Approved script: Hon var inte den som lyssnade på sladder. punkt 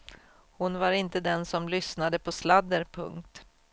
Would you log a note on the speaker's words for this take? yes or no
no